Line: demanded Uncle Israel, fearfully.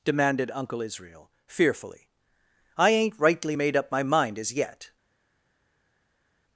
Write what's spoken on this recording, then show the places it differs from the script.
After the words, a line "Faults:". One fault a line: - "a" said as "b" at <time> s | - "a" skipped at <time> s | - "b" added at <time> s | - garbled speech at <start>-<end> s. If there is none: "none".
demanded Uncle Israel, fearfully. "I ain't rightly made up my mind as yet
Faults:
- "I ain't rightly made up my mind as yet" added at 2.8 s